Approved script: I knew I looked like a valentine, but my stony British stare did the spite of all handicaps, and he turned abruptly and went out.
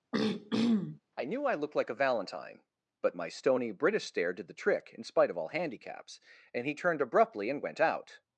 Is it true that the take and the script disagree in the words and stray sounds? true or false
true